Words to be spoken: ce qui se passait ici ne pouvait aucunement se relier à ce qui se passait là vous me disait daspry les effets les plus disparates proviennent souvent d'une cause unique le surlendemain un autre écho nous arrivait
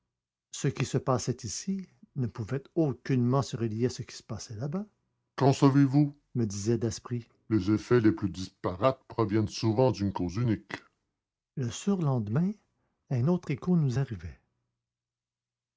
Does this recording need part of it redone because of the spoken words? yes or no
yes